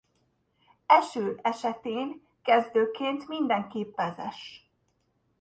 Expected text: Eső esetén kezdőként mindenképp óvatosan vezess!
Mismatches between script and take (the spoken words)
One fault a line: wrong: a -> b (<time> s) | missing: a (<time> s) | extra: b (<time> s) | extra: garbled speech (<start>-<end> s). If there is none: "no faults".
missing: óvatosan (4.0 s)